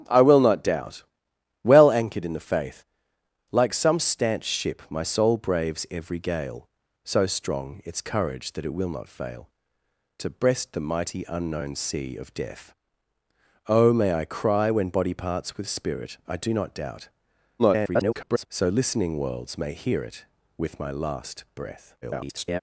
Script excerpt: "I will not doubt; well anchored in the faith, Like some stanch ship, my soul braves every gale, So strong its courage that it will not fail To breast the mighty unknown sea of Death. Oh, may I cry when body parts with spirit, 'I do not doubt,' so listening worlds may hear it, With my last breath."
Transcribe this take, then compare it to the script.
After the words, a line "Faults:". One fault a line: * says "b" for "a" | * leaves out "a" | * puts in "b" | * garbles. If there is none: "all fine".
"I will not doubt; well anchored in the faith, Like some stanch ship, my soul braves every gale, So strong its courage that it will not fail To breast the mighty unknown sea of Death. Oh, may I cry when body parts with spirit, 'I do not doubt,' [garbled] so listening worlds may hear it, With my last breath." [garbled]
Faults:
* garbles
* garbles